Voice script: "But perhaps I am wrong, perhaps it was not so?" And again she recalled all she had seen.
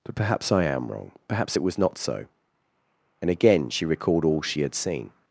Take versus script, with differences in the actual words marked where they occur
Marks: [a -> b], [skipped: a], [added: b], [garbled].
"But perhaps I am wrong, perhaps it was not so?" And again she recalled all she had seen.